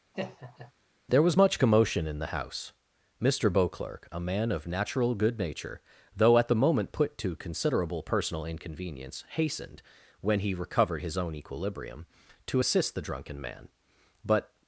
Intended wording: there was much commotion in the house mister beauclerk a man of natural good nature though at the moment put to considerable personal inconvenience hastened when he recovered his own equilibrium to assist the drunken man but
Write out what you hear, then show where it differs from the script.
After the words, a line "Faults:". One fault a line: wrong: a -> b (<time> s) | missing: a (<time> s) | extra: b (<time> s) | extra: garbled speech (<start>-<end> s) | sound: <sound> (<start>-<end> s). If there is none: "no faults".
there was much commotion in the house mister beauclerk a man of natural good nature though at the moment put to considerable personal inconvenience hastened when he recovered his own equilibrium to assist the drunken man but
Faults:
sound: laugh (0.1-0.7 s)